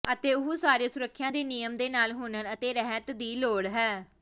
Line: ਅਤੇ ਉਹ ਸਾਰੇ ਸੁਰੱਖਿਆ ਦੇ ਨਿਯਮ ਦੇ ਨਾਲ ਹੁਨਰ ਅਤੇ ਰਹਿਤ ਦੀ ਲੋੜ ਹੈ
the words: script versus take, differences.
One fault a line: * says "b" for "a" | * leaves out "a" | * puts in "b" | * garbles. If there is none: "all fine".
all fine